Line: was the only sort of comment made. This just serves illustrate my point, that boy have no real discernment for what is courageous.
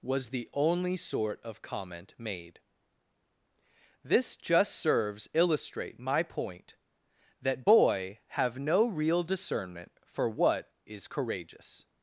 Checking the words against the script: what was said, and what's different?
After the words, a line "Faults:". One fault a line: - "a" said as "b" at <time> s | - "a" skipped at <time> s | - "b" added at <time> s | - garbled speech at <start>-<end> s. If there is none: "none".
was the only sort of comment made. This just serves illustrate my point, that boy have no real discernment for what is courageous.
Faults:
none